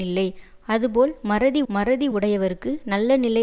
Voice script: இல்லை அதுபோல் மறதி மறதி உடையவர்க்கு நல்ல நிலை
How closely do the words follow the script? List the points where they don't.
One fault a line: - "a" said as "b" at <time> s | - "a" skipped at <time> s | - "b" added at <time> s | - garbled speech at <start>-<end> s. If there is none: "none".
none